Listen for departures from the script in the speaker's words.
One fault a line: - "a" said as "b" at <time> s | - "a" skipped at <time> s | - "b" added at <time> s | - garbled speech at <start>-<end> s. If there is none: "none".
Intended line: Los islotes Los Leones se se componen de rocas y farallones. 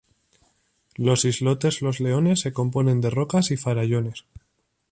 - "se" skipped at 2.5 s